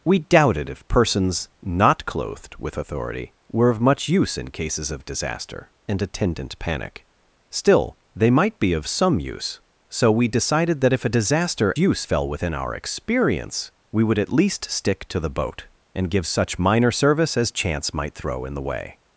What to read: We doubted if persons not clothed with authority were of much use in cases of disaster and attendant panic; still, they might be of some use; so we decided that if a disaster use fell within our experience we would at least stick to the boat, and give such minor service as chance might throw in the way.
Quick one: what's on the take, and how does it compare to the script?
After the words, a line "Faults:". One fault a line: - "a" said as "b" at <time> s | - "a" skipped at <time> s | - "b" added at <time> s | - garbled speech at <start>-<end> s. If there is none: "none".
We doubted if persons not clothed with authority were of much use in cases of disaster and attendant panic; still, they might be of some use; so we decided that if a disaster use fell within our experience we would at least stick to the boat, and give such minor service as chance might throw in the way.
Faults:
none